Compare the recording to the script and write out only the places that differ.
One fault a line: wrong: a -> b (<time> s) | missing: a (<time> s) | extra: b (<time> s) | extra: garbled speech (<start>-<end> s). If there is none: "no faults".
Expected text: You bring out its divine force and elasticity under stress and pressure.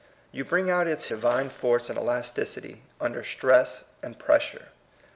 no faults